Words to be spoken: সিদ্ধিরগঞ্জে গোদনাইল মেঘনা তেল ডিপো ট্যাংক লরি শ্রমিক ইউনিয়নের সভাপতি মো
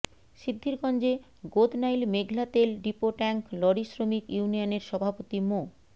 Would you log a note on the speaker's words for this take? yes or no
no